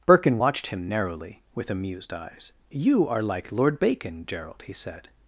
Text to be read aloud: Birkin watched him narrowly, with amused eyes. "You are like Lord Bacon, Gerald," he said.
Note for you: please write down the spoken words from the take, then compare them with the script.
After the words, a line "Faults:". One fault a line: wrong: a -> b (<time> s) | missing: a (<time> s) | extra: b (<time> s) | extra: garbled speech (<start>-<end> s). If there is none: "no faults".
Birkin watched him narrowly, with amused eyes. "You are like Lord Bacon, Gerald," he said.
Faults:
no faults